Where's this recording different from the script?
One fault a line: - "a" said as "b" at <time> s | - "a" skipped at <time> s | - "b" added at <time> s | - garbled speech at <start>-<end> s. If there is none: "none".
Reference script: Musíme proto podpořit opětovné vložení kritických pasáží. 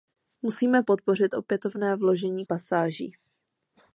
- "proto" skipped at 0.8 s
- "kritických" skipped at 2.5 s